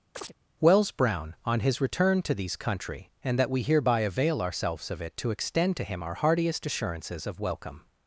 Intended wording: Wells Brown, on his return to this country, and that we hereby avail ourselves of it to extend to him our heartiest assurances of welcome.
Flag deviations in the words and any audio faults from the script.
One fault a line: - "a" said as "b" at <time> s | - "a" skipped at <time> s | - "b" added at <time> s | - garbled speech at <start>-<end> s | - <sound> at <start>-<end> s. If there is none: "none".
- chirp at 0.1-0.3 s
- "this" said as "these" at 2.3 s